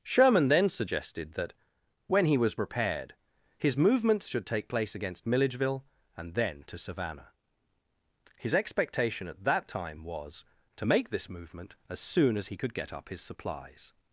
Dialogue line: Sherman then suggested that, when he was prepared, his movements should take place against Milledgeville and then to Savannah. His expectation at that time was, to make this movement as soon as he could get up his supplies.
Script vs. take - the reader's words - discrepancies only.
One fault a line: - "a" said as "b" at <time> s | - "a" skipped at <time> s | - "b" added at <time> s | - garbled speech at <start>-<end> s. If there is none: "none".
none